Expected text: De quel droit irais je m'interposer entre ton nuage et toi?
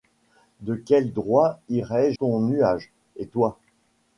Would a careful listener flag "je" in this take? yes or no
yes